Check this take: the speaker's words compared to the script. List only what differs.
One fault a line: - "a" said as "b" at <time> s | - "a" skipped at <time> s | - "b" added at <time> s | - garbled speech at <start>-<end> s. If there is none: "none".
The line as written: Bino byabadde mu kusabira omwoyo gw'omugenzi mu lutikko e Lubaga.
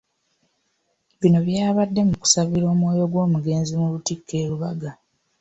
none